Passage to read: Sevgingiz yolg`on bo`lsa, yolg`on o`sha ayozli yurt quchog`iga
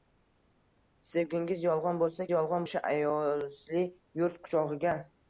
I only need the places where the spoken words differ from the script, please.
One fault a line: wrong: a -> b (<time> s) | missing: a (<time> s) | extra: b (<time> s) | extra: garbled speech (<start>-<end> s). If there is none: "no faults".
no faults